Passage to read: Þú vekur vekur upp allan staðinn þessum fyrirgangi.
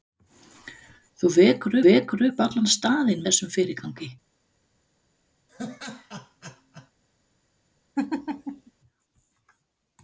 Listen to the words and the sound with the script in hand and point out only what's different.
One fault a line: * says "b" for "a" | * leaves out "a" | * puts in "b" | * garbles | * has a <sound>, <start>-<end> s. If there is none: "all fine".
* has a laugh, 5.5-6.9 s
* has a laugh, 8.0-8.7 s